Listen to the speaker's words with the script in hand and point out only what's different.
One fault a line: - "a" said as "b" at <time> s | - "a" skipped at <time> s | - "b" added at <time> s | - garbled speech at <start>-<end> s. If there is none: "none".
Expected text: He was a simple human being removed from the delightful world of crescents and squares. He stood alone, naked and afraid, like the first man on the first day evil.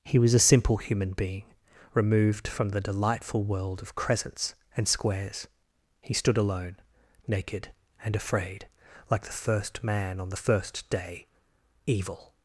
none